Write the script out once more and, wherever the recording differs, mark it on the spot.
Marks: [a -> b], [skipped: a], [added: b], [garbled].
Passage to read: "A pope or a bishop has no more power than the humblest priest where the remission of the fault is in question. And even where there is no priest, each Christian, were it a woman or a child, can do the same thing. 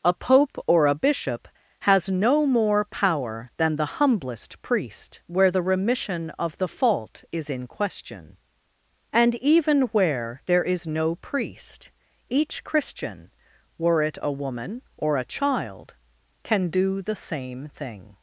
"A pope or a bishop has no more power than the humblest priest where the remission of the fault is in question. And even where there is no priest, each Christian, were it a woman or a child, can do the same thing.